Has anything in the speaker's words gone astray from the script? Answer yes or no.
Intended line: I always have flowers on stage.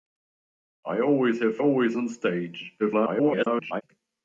yes